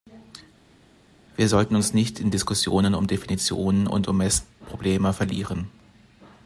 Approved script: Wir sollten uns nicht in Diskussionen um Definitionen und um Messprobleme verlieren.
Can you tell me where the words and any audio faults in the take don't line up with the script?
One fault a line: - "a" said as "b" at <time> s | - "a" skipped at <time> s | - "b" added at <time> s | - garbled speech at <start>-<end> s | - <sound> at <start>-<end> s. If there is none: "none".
none